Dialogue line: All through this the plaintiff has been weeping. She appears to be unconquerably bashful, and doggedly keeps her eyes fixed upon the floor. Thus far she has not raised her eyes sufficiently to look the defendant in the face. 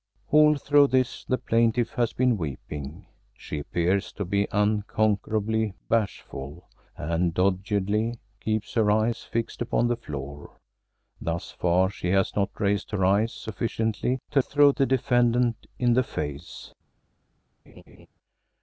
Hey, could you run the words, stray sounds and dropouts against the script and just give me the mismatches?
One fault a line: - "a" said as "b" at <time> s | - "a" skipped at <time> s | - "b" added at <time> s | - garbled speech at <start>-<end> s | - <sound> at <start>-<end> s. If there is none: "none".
- "look" said as "through" at 14.4 s
- laugh at 17.7-18.1 s